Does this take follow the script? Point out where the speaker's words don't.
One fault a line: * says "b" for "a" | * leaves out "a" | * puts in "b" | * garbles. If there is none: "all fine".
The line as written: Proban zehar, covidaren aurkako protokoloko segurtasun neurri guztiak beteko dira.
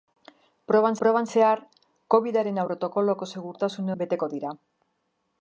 * puts in "proban"
* leaves out "aurkako"
* leaves out "neurri guztiak"